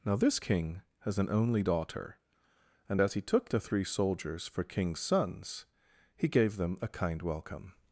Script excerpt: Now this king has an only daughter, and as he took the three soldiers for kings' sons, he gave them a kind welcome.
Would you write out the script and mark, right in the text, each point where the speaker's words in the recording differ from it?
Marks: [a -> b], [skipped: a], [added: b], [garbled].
Now this king has an only daughter, and as he took the three soldiers for kings' sons, he gave them a kind welcome.